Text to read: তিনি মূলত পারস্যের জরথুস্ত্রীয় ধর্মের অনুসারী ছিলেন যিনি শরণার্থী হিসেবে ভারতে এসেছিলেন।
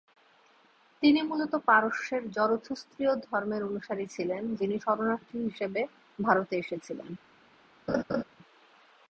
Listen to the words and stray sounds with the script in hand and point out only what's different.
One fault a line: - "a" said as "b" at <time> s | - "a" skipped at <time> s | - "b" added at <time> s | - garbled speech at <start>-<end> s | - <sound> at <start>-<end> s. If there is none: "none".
- laugh at 7.9-8.2 s